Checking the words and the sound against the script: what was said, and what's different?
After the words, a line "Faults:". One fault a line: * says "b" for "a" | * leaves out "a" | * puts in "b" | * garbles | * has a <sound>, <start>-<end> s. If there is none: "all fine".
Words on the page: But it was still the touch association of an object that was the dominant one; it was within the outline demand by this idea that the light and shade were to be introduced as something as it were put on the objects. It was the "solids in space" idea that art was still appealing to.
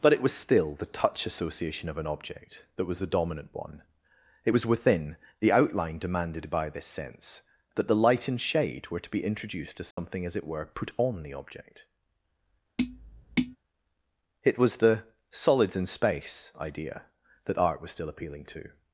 But it was still the touch association of an object that was the dominant one; it was within the outline demanded by this sense that the light and shade were to be introduced as something as it were put on the object. It was the "solids in space" idea that art was still appealing to.
Faults:
* says "demanded" for "demand"
* says "sense" for "idea"
* has a dropout, 9.9-10.0 s
* says "object" for "objects"
* has a tap, 12.8-13.6 s